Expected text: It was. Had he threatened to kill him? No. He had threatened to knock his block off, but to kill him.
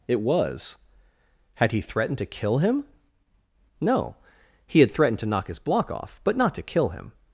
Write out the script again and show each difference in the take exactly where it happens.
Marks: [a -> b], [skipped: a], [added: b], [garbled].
It was. Had he threatened to kill him? No. He had threatened to knock his block off, but [added: not] to kill him.